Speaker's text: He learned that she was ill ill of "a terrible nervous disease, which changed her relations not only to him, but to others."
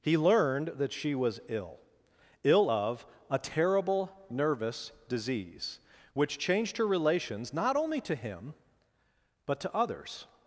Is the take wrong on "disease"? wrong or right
right